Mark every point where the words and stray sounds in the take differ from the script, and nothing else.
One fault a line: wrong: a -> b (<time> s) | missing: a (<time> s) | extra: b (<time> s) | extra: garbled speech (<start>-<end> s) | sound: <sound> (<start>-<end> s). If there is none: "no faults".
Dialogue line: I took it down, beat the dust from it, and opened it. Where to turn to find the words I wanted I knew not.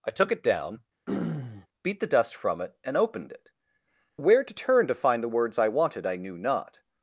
sound: throat clearing (1.1-1.7 s)